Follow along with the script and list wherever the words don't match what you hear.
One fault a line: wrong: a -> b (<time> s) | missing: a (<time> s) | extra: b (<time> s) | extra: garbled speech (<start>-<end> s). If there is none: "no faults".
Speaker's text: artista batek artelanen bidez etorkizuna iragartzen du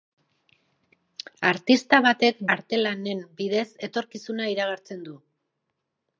no faults